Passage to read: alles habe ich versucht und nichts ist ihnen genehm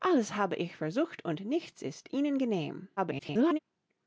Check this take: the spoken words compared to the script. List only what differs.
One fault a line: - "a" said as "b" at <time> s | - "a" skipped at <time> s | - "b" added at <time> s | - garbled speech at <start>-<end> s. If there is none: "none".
- garbled speech at 3.0-3.6 s